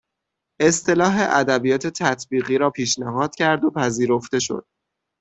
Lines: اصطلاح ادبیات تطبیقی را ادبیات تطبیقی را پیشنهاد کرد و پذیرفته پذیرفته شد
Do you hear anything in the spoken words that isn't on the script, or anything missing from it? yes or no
yes